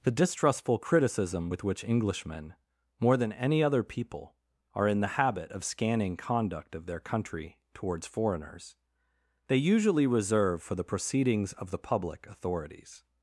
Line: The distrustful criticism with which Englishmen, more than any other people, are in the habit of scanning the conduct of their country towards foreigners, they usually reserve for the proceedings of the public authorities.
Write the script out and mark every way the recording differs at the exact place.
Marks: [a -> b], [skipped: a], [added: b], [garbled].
The distrustful criticism with which Englishmen, more than any other people, are in the habit of scanning [skipped: the] conduct of their country towards foreigners, they usually reserve for the proceedings of the public authorities.